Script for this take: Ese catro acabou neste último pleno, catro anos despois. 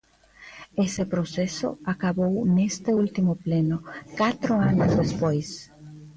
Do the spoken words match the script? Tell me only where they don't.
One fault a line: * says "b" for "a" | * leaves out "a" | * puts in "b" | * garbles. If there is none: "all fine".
* says "proceso" for "catro"